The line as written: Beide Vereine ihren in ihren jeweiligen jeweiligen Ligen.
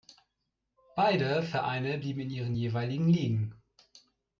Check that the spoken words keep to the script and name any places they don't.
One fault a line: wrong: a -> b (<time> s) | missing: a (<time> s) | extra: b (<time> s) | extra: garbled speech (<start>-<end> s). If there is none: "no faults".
wrong: ihren -> blieben (2.0 s)
missing: jeweiligen (3.1 s)